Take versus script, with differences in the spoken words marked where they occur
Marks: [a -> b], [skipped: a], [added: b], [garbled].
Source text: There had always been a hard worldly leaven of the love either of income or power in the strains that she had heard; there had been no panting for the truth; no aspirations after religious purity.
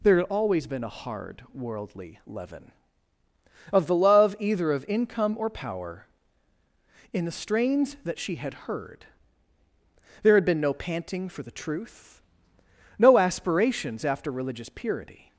There had always been a hard worldly leaven of the love either of income or power in the strains that she had heard; there had been no panting for the truth; no aspirations after religious purity.